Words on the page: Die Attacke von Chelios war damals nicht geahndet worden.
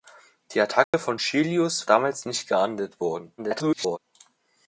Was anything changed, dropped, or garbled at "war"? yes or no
yes